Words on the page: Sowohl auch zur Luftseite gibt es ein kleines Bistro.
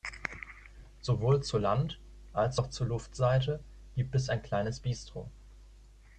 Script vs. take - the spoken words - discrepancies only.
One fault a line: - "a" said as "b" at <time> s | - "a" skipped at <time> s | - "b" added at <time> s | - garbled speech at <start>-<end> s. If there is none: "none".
- "zur Land als" added at 1.4 s